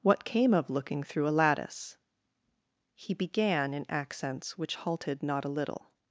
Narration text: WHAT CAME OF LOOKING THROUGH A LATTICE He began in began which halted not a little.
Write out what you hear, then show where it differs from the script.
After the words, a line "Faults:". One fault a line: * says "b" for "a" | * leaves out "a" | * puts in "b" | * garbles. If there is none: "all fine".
WHAT CAME OF LOOKING THROUGH A LATTICE He began in accents which halted not a little.
Faults:
* says "accents" for "began"